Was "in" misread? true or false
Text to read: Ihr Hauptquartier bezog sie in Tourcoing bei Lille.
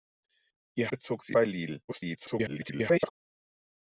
true